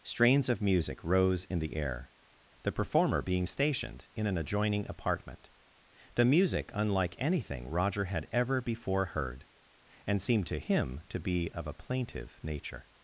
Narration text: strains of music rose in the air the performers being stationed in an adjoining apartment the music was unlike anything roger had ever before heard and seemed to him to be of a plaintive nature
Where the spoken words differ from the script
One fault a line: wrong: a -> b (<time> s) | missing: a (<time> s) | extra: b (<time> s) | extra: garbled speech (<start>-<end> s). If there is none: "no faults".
wrong: performers -> performer (2.7 s)
missing: was (6.7 s)